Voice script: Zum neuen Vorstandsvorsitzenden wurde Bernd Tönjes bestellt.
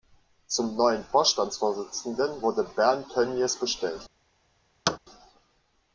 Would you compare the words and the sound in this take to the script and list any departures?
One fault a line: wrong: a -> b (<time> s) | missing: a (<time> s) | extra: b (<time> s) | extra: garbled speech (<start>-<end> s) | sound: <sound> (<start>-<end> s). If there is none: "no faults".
sound: thud (4.9-5.0 s)